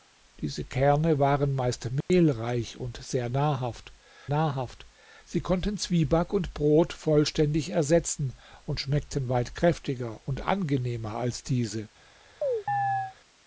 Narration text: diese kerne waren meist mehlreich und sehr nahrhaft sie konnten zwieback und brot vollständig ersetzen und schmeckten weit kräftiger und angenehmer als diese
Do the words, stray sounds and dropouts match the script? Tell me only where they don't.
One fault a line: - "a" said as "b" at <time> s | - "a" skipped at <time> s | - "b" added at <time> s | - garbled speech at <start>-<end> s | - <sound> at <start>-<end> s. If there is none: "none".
- dropout at 2.0-2.1 s
- "nahrhaft" added at 4.3 s
- chirp at 12.4-13.2 s